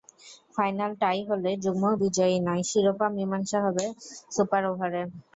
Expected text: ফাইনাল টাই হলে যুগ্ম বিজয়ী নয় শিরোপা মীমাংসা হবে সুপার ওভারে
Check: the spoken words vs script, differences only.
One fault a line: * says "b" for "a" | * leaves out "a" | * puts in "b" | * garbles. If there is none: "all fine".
all fine